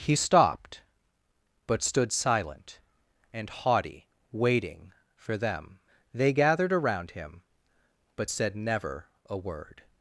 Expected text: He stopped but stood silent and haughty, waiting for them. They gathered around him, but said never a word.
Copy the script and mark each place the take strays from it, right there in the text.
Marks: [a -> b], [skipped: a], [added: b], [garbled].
He stopped but stood silent and haughty, waiting for them. They gathered around him, but said never a word.